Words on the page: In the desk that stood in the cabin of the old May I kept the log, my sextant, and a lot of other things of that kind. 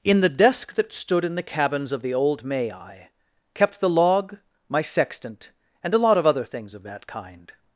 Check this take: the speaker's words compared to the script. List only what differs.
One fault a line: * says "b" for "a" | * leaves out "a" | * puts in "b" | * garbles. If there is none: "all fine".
* says "cabins" for "cabin"